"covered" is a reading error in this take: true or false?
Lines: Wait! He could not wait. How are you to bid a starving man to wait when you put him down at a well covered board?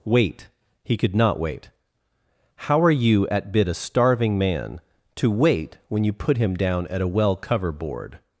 true